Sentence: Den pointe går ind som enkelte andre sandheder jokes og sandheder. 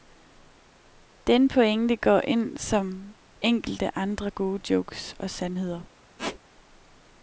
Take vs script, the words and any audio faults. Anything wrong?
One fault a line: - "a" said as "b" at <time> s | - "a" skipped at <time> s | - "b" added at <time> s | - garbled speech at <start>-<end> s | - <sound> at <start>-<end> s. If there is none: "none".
- "sandheder" said as "gode" at 4.3 s
- squeak at 6.2-6.4 s